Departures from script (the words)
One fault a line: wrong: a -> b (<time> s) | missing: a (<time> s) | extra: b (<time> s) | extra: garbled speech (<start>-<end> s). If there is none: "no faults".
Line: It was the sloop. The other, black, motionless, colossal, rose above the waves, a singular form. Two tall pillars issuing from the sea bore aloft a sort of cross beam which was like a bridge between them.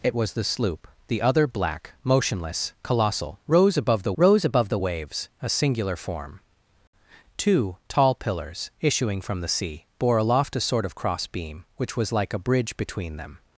extra: rose above the (4.2 s)